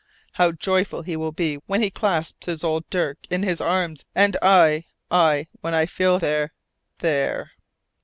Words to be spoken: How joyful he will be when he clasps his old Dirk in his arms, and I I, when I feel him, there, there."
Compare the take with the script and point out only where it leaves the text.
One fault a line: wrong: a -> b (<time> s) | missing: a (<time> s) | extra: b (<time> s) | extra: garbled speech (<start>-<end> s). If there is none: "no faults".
missing: him (6.2 s)